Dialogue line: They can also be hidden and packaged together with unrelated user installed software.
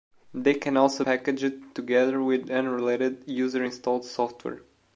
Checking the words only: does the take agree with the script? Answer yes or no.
no